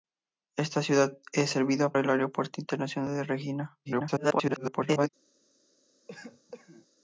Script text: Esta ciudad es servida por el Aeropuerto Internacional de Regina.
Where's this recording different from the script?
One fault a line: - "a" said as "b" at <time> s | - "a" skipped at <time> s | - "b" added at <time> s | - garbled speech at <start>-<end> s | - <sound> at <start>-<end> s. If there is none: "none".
- "por" skipped at 1.9 s
- garbled speech at 3.9-5.1 s
- cough at 6.1-6.9 s